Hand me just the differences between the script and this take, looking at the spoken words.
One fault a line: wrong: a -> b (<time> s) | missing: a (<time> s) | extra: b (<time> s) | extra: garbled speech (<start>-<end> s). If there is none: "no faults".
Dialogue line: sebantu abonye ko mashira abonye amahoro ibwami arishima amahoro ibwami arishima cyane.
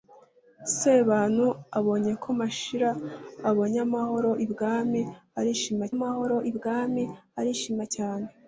no faults